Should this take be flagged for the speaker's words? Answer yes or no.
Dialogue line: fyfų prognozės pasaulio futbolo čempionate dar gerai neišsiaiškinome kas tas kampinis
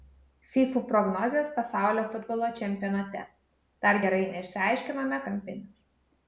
yes